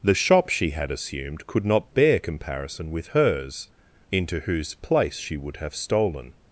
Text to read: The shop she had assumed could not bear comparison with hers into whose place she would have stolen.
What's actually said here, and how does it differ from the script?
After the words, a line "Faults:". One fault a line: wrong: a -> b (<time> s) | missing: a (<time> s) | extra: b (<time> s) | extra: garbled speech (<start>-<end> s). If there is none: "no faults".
The shop she had assumed could not bear comparison with hers into whose place she would have stolen.
Faults:
no faults